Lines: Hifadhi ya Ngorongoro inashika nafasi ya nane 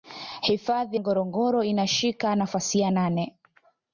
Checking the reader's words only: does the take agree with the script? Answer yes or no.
no